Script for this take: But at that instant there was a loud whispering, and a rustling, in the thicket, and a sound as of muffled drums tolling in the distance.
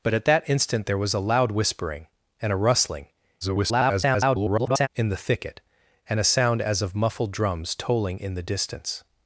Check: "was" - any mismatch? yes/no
no